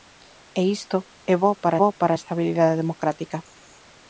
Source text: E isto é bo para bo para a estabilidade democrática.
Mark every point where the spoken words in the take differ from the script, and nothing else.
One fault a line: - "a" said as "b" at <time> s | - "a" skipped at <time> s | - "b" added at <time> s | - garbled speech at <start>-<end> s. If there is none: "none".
none